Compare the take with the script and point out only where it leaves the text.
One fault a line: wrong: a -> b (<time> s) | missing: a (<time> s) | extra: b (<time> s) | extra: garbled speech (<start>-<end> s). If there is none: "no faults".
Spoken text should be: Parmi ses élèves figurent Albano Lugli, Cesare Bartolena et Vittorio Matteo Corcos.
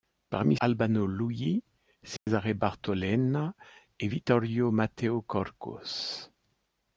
missing: ses élèves figurent (0.6 s)